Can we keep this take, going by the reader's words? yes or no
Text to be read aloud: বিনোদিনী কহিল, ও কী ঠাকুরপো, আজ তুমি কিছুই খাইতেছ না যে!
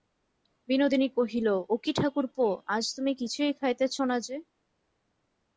yes